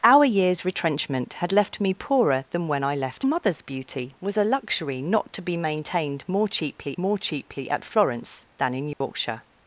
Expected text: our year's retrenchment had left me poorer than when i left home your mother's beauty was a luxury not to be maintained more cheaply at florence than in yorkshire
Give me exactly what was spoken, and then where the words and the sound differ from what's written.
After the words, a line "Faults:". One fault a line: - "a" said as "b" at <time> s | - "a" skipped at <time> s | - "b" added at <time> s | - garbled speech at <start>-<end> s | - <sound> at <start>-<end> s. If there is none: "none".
our year's retrenchment had left me poorer than when i left mother's beauty was a luxury not to be maintained more cheaply more cheaply at florence than in yorkshire
Faults:
- "home your" skipped at 3.2 s
- "more cheaply" added at 7.0 s
- dropout at 8.9-9.0 s